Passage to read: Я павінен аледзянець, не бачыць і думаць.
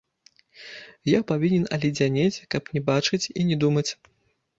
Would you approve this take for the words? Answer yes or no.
no